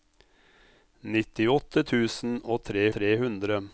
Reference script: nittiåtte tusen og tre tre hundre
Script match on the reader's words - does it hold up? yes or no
yes